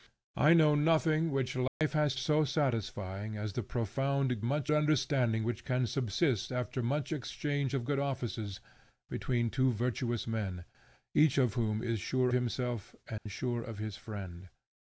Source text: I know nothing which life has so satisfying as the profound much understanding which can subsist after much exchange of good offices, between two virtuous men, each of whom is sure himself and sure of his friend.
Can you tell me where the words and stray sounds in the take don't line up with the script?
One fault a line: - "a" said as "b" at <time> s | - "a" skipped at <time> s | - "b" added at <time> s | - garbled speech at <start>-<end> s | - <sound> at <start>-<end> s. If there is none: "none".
- dropout at 1.7-1.8 s
- dropout at 13.2-13.3 s